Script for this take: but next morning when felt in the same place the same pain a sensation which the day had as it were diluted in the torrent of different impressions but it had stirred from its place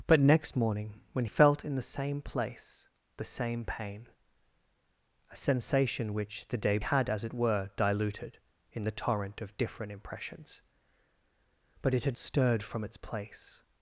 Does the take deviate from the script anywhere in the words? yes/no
no